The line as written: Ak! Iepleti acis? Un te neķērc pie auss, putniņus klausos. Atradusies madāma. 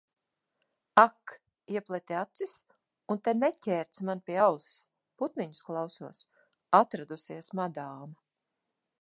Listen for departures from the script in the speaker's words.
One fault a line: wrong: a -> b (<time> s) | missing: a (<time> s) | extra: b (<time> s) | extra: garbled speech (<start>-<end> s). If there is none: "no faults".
extra: man (4.1 s)